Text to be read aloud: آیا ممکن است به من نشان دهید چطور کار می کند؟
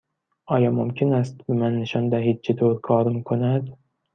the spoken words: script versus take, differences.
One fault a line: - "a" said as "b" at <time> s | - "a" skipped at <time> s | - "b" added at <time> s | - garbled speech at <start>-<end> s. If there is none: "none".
none